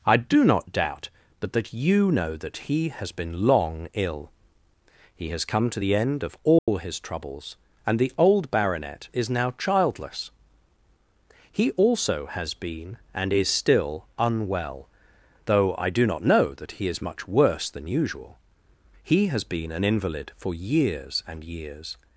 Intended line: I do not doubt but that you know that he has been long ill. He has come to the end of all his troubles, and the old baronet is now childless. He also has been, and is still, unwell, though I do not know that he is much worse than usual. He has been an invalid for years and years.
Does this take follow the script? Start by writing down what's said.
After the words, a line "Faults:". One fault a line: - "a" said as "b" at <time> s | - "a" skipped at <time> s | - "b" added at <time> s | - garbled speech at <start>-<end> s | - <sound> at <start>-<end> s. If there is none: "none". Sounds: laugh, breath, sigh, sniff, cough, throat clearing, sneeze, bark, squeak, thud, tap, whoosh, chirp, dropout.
I do not doubt but that you know that he has been long ill. He has come to the end of all his troubles, and the old baronet is now childless. He also has been, and is still, unwell, though I do not know that he is much worse than usual. He has been an invalid for years and years.
Faults:
- dropout at 6.6-6.7 s